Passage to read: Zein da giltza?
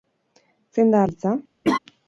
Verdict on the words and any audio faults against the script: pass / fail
fail